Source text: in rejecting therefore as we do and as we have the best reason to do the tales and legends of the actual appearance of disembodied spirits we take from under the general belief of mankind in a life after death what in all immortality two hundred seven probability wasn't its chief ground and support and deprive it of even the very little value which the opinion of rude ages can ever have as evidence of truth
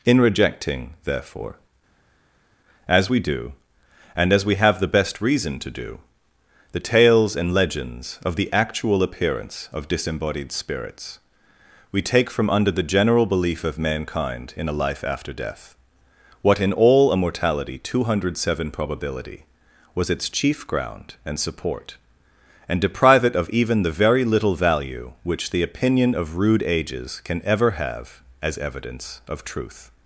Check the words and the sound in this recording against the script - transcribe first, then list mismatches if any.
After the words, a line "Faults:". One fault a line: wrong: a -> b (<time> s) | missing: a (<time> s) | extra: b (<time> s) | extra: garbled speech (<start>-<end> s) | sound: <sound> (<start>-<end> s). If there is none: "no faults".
in rejecting therefore as we do and as we have the best reason to do the tales and legends of the actual appearance of disembodied spirits we take from under the general belief of mankind in a life after death what in all immortality two hundred seven probability was its chief ground and support and deprive it of even the very little value which the opinion of rude ages can ever have as evidence of truth
Faults:
wrong: wasn't -> was (19.9 s)